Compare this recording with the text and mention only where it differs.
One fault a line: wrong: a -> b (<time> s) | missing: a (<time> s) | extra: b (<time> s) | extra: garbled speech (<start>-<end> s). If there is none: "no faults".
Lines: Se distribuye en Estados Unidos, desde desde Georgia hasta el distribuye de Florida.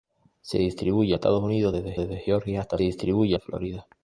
no faults